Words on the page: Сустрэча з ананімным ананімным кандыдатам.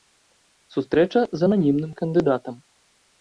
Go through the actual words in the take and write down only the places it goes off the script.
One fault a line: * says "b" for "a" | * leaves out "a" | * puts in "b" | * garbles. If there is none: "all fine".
* leaves out "ананімным"